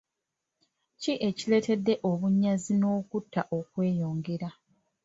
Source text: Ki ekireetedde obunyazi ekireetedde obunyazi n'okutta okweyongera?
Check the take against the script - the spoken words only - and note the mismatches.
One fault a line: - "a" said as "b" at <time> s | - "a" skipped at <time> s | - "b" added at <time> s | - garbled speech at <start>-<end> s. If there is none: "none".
- "ekireetedde obunyazi" skipped at 2.7 s